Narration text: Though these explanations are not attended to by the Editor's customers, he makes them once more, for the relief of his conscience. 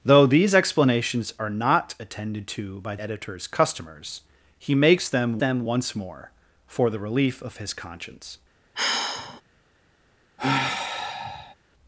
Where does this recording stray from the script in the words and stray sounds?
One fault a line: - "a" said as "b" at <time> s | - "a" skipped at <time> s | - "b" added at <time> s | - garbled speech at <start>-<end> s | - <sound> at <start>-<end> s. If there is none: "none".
- "the" skipped at 3.0 s
- "them" added at 5.4 s
- sigh at 8.7-9.4 s
- sigh at 10.4-11.6 s